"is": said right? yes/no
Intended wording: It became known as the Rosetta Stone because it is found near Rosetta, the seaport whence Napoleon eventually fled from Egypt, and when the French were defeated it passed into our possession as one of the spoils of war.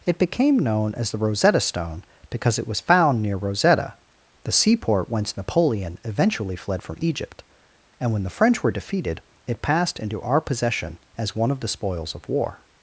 no